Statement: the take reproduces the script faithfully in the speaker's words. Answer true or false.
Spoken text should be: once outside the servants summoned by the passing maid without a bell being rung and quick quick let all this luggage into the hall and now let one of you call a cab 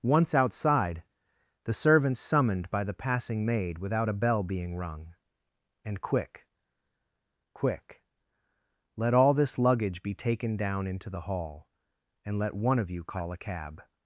false